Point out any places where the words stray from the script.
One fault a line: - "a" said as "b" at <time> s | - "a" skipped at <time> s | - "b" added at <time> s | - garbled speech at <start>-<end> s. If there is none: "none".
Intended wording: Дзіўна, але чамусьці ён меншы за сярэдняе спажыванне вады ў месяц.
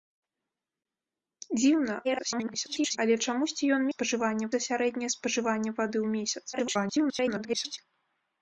- garbled speech at 2.0-3.0 s
- "меншы" said as "спажыванне" at 3.9 s
- garbled speech at 6.5-7.8 s